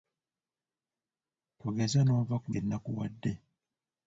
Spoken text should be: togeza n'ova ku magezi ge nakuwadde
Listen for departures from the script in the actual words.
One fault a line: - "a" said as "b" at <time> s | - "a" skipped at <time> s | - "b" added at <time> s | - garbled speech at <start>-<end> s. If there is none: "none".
- "magezi" skipped at 2.5 s